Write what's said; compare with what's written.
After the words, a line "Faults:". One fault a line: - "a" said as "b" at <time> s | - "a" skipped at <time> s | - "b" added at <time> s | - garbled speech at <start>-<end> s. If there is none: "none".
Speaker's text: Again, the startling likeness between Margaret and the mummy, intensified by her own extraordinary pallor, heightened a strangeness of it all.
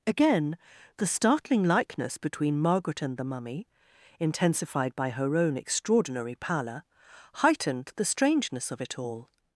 Again, the startling likeness between Margaret and the mummy, intensified by her own extraordinary pallor, heightened the strangeness of it all.
Faults:
- "a" said as "the" at 8.0 s